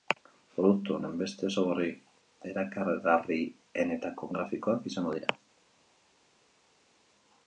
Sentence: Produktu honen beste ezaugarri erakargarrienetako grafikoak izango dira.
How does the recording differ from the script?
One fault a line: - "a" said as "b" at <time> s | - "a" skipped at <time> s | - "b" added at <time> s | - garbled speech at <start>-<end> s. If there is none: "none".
none